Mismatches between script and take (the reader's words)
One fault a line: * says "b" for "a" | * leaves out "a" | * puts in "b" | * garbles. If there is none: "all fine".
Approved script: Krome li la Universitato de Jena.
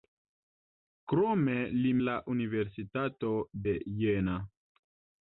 all fine